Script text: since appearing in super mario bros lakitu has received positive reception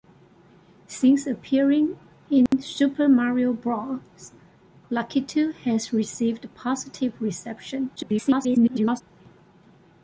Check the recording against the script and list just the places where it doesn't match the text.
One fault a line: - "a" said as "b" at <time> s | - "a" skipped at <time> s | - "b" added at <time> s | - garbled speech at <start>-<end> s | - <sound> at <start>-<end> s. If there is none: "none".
- dropout at 2.5-2.5 s
- garbled speech at 8.0-9.0 s